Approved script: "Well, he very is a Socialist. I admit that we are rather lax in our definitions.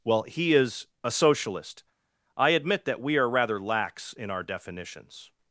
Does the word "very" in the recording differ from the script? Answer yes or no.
yes